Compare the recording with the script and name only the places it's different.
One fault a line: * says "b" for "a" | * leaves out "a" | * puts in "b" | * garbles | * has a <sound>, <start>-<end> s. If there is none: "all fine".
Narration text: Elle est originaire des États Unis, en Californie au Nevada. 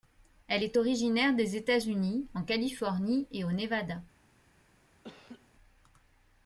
* puts in "et"
* has a laugh, 5.0-5.5 s